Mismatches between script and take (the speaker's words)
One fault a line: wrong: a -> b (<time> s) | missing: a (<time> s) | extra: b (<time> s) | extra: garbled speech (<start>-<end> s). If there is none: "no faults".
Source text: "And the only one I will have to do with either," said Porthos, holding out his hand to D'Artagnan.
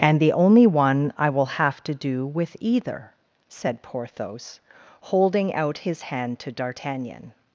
no faults